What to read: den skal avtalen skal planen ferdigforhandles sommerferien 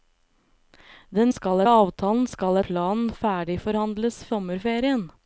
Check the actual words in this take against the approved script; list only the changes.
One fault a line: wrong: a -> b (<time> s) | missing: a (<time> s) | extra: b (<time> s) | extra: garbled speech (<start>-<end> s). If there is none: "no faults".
no faults